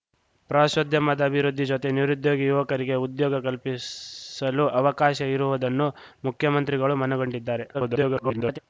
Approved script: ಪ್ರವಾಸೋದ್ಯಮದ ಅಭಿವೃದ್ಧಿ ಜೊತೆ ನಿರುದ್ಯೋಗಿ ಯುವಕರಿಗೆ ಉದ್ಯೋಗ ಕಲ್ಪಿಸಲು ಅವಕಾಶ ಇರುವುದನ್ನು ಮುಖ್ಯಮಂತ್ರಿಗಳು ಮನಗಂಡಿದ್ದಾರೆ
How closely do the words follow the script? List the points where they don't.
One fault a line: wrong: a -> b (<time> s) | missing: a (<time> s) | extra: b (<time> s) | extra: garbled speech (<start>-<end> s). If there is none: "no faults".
extra: garbled speech (7.7-8.6 s)